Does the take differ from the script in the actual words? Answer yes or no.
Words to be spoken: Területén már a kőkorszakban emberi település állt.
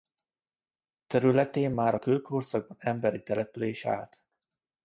no